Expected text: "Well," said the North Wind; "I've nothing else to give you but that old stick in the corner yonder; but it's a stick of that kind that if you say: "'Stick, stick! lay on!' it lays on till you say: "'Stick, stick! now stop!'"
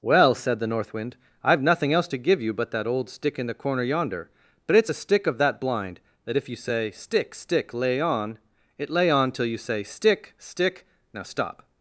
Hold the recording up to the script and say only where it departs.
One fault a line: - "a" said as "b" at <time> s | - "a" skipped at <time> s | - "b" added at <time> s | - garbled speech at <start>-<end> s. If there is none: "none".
- "kind" said as "blind" at 5.6 s
- "lays" said as "lay" at 8.9 s